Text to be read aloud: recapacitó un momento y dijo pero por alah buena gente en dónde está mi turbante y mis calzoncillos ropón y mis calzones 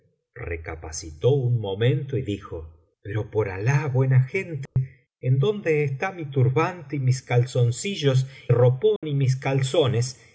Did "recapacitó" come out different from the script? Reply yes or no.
no